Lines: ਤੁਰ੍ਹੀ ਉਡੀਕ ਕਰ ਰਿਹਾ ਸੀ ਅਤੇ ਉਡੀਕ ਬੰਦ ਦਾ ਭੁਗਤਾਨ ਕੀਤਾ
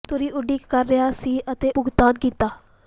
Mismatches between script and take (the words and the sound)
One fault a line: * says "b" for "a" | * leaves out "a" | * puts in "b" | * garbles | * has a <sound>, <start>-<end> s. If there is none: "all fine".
* leaves out "ਉਡੀਕ ਬੰਦ ਦਾ"